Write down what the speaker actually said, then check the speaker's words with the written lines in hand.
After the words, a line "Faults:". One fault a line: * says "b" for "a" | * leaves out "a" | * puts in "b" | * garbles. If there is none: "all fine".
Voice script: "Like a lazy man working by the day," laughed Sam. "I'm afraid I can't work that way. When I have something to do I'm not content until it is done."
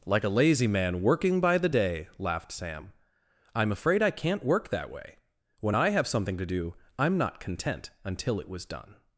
"Like a lazy man working by the day," laughed Sam. "I'm afraid I can't work that way. When I have something to do I'm not content until it was done."
Faults:
* says "was" for "is"